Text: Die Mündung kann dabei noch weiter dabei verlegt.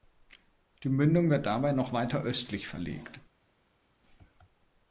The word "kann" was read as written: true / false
false